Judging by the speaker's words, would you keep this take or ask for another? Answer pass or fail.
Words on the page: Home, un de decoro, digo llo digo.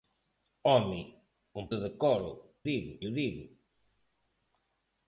pass